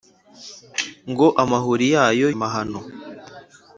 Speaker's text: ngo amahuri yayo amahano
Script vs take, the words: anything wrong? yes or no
no